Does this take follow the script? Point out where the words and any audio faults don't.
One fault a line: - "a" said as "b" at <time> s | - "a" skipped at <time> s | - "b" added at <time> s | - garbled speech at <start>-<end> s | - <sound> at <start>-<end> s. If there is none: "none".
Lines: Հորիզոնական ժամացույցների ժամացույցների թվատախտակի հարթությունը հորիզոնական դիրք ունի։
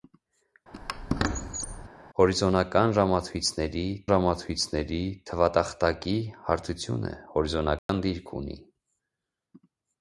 - squeak at 0.7-1.9 s
- dropout at 7.8-7.9 s